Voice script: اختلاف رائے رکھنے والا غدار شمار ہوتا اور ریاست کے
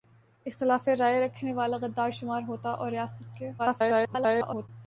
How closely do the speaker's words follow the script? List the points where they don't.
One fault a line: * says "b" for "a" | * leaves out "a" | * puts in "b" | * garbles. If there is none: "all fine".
* garbles